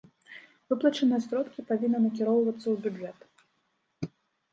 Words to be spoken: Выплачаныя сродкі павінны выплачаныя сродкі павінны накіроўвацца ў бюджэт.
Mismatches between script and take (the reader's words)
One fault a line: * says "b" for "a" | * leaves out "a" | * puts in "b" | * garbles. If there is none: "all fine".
* leaves out "выплачаныя сродкі павінны"